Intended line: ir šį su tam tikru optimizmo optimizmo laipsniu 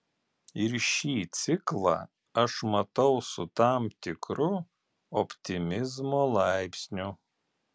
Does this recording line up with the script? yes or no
no